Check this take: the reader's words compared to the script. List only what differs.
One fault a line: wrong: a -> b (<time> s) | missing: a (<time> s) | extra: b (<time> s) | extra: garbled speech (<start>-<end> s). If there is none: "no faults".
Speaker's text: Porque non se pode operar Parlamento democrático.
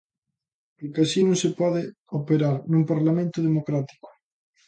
extra: así (1.1 s)
extra: nun (2.7 s)